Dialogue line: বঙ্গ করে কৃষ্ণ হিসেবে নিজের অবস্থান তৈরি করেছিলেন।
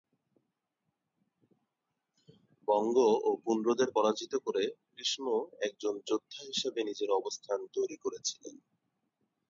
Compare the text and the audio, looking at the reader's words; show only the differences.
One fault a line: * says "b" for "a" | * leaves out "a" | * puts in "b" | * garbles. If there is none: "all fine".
* puts in "ও পুন্ড্রদের পরাজিত"
* puts in "একজন যোদ্ধা"